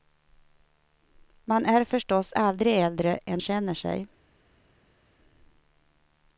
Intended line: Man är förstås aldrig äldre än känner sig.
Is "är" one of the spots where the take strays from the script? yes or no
no